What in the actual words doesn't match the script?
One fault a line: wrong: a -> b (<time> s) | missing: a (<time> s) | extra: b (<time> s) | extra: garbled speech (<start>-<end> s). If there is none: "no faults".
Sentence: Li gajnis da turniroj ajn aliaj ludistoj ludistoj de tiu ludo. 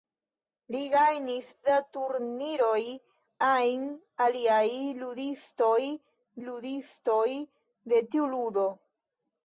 no faults